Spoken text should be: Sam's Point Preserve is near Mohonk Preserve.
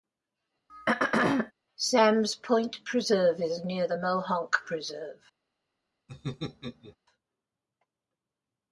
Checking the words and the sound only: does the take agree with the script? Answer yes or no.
no